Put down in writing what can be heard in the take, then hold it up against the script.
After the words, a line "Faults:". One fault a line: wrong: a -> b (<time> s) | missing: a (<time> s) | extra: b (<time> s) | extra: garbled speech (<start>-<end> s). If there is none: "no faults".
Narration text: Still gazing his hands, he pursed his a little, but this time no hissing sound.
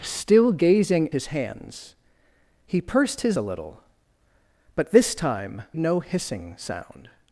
Still gazing his hands, he pursed his a little, but this time no hissing sound.
Faults:
no faults